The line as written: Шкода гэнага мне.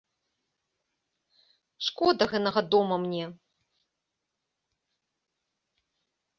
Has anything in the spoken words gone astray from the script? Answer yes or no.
yes